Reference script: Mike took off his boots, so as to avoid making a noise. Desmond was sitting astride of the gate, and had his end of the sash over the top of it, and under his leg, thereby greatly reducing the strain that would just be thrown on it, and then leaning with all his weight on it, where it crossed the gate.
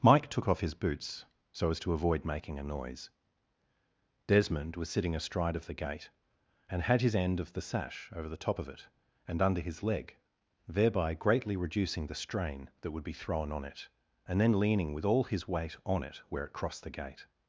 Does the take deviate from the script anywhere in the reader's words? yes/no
yes